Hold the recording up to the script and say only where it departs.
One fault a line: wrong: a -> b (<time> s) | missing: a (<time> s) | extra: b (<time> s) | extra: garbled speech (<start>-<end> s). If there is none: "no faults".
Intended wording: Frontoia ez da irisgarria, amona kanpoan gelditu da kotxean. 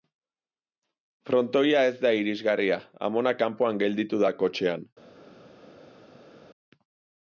no faults